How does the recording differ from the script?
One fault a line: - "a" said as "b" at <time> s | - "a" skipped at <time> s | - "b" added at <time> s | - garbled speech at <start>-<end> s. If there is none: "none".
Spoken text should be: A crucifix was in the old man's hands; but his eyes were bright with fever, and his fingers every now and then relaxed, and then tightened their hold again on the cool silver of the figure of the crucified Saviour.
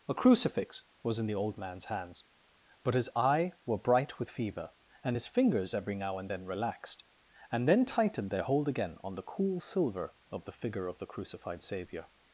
- "eyes" said as "eye" at 3.1 s